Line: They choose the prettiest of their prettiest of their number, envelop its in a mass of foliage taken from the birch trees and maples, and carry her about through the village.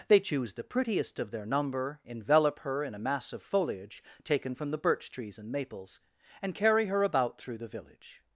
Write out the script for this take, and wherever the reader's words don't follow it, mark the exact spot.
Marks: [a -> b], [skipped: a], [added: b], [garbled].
They choose the prettiest of their [skipped: prettiest of their] number, envelop [its -> her] in a mass of foliage taken from the birch trees and maples, and carry her about through the village.